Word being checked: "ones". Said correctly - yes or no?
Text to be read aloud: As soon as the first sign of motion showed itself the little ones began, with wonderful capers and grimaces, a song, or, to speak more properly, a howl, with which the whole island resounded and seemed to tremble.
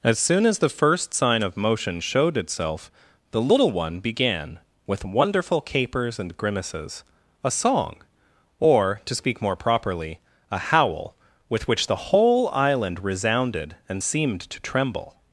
no